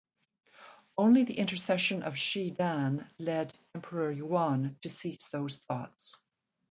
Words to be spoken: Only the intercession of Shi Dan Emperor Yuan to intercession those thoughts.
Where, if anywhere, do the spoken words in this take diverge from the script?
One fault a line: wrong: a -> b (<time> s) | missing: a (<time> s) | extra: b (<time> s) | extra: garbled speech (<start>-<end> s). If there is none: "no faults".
extra: led (3.2 s)
wrong: intercession -> cease (4.9 s)